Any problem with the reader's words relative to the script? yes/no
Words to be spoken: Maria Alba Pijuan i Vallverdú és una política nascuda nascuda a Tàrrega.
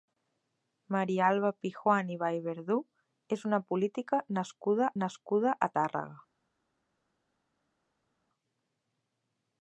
no